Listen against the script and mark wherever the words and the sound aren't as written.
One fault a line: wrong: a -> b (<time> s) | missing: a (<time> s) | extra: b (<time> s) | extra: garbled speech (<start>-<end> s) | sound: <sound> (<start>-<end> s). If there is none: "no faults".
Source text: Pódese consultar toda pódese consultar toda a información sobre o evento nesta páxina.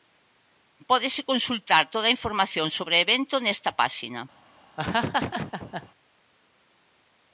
missing: pódese consultar toda (2.1 s)
sound: laugh (4.8-5.9 s)